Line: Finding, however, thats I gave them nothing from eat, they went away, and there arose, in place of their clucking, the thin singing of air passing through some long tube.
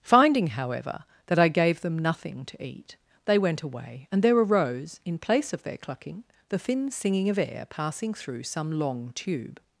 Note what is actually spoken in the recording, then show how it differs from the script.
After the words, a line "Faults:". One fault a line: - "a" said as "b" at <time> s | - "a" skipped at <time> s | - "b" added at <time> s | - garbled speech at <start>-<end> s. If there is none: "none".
Finding, however, that I gave them nothing to eat, they went away, and there arose, in place of their clucking, the thin singing of air passing through some long tube.
Faults:
- "thats" said as "that" at 1.3 s
- "from" said as "to" at 2.5 s